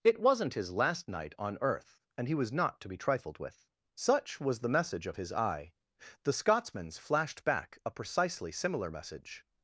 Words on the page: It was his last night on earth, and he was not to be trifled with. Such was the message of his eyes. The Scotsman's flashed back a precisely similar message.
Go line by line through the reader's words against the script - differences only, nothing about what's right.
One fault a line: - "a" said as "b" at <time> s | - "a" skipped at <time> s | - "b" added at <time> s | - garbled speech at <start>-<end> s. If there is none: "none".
- "was" said as "wasn't" at 0.2 s
- "eyes" said as "eye" at 5.3 s